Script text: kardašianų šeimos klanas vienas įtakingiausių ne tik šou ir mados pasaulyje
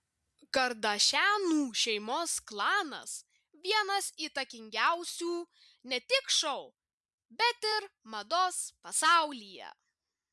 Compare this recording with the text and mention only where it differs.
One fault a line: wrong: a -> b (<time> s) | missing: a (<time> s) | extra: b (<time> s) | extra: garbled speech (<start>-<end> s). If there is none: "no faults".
extra: bet (7.4 s)